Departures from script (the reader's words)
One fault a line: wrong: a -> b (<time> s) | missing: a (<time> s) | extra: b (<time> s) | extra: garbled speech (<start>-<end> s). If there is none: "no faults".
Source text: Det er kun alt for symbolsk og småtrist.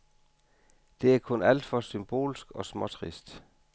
no faults